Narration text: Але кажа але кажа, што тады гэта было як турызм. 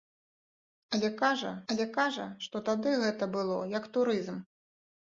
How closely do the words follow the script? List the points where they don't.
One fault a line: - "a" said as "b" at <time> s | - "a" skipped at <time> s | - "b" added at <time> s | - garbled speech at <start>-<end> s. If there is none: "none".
none